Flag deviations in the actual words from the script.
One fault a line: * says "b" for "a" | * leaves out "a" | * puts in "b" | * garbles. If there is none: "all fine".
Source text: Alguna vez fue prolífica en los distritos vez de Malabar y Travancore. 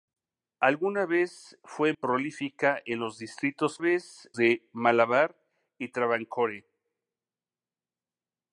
all fine